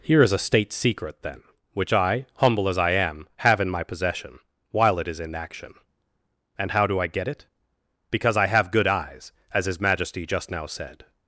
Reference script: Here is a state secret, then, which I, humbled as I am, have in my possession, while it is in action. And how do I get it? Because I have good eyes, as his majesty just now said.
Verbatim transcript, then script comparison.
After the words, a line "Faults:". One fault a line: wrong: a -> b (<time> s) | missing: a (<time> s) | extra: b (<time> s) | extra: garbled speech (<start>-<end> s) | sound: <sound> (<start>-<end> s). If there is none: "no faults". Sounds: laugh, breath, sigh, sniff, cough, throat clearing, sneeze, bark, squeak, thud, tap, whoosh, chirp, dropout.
Here is a state secret, then, which I, humble as I am, have in my possession, while it is in action. And how do I get it? Because I have good eyes, as his majesty just now said.
Faults:
wrong: humbled -> humble (2.4 s)